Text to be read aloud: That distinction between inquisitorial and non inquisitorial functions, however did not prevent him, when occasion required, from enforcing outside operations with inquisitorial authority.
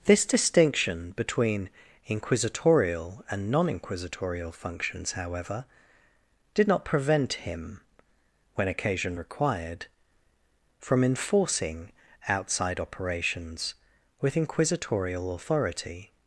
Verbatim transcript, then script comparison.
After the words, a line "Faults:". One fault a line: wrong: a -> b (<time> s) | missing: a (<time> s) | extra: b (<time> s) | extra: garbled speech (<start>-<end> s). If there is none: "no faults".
This distinction between inquisitorial and non inquisitorial functions, however did not prevent him, when occasion required, from enforcing outside operations with inquisitorial authority.
Faults:
wrong: That -> This (0.1 s)